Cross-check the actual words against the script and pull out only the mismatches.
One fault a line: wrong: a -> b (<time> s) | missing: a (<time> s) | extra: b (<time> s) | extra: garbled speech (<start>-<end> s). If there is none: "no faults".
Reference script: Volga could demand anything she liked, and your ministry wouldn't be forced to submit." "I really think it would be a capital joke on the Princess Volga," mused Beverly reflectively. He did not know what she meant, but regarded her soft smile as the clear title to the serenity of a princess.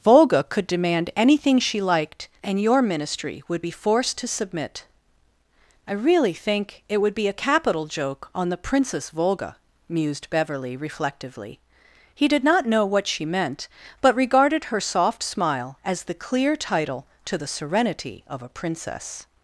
wrong: wouldn't -> would (3.5 s)